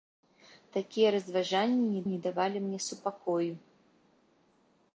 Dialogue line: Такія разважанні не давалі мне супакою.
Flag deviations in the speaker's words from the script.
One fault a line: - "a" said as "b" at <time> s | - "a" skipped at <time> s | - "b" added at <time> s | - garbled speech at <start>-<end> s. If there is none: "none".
- "не" added at 2.1 s